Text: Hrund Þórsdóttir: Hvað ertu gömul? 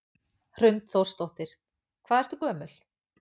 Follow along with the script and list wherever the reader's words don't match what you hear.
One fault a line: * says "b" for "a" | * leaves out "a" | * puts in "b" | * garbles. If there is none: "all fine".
all fine